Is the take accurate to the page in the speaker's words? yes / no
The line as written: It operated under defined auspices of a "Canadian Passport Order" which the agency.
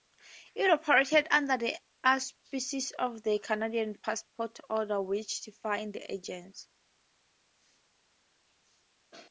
no